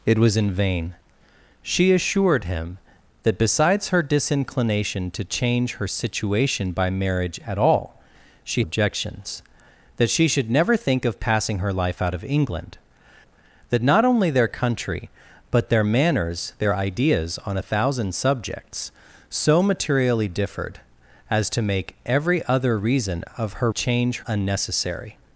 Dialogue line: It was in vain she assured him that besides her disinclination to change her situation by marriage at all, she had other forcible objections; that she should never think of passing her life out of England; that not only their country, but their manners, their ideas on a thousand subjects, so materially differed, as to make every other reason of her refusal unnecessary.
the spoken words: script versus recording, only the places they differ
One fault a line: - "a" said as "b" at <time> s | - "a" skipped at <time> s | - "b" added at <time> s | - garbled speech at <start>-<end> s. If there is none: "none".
- "had other forcible" skipped at 8.6 s
- "refusal" said as "change" at 23.7 s